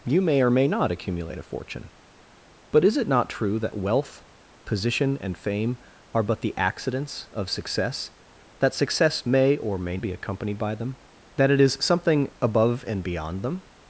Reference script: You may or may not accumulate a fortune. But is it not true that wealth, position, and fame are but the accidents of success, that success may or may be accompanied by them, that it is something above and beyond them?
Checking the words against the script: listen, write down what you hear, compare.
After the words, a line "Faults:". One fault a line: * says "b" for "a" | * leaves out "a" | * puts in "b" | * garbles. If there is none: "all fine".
You may or may not accumulate a fortune. But is it not true that wealth, position, and fame are but the accidents of success, that success may or may be accompanied by them, that it is something above and beyond them?
Faults:
all fine